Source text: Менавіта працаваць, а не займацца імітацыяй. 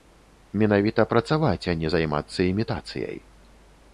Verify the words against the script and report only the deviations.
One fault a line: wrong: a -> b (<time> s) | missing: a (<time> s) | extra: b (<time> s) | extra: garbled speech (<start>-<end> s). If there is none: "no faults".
no faults